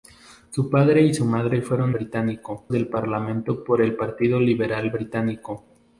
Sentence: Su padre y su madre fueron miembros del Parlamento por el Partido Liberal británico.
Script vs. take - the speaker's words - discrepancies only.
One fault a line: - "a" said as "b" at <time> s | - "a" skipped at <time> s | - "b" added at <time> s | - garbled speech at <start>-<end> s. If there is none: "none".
- "miembros" said as "británico" at 1.9 s